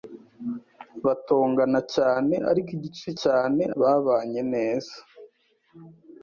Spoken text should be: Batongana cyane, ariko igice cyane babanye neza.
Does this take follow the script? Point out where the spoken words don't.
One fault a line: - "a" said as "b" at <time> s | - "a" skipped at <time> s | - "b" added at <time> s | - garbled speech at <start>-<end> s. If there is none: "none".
none